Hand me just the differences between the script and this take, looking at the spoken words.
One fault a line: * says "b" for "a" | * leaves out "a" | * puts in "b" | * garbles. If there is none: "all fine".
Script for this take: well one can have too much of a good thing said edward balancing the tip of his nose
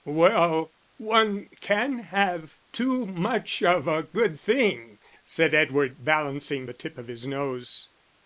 all fine